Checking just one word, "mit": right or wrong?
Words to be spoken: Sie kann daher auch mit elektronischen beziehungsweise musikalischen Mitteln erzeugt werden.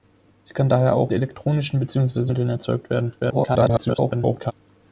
wrong